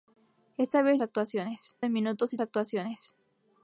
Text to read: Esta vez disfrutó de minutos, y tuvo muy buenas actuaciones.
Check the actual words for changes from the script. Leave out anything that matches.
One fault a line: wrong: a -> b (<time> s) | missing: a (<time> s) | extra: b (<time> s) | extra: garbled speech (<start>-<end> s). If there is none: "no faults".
wrong: disfrutó -> actuaciones (1.0 s)
missing: tuvo muy buenas (2.4 s)